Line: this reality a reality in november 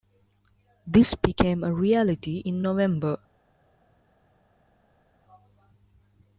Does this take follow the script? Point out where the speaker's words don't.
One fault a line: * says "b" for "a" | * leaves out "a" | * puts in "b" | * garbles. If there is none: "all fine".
* says "became" for "reality"